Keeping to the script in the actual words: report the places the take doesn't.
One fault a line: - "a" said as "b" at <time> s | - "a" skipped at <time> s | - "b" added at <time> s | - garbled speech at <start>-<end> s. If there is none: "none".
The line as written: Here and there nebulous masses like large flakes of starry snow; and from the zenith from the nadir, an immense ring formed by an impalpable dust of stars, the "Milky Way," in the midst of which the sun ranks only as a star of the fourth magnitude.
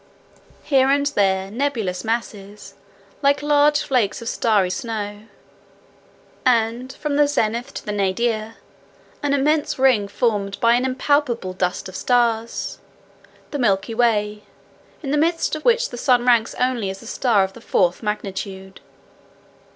- "from" said as "to" at 7.8 s